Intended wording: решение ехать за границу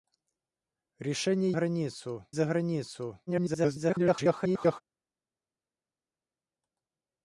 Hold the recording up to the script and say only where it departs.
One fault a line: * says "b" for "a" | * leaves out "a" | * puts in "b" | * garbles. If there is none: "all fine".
* says "границу" for "ехать"
* garbles